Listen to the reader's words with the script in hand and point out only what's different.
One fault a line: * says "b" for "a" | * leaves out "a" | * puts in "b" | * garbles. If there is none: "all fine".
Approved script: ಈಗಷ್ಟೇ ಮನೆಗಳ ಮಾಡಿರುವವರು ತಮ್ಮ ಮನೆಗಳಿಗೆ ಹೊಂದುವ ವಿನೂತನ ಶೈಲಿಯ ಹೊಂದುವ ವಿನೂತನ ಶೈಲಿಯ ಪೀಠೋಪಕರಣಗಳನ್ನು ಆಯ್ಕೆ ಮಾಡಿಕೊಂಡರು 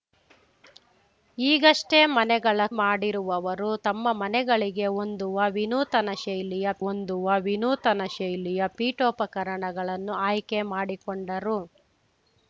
all fine